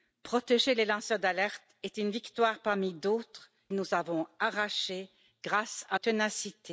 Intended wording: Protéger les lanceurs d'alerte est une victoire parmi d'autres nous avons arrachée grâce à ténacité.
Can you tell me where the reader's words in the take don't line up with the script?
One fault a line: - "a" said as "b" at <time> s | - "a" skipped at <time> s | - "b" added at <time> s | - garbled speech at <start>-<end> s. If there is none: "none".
none